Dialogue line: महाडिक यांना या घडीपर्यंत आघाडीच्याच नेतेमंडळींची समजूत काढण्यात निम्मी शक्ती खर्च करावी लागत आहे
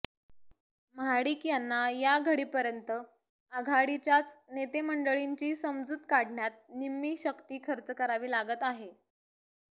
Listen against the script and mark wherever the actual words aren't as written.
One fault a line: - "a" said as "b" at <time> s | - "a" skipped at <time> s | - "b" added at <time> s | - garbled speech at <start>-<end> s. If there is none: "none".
none